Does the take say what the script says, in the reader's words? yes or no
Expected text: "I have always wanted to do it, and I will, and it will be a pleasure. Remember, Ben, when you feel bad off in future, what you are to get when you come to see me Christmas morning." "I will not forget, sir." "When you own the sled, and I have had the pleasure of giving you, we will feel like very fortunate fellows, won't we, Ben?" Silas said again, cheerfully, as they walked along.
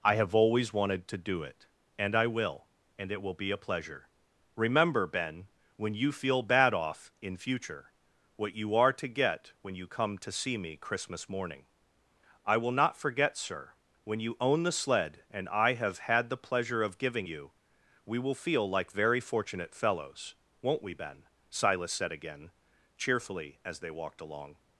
yes